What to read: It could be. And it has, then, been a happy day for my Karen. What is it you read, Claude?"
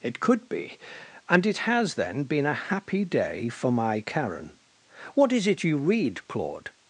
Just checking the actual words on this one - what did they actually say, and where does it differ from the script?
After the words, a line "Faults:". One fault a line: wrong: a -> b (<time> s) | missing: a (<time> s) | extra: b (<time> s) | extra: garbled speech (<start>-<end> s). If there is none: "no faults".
It could be. And it has, then, been a happy day for my Karen. What is it you read, Claude?"
Faults:
no faults